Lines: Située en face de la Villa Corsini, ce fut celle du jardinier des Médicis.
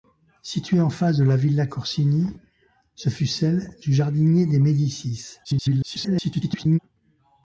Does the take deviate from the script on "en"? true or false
false